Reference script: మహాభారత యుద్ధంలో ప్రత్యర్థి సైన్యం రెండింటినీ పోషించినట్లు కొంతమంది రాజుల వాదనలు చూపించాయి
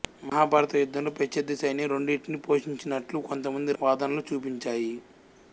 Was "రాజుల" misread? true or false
true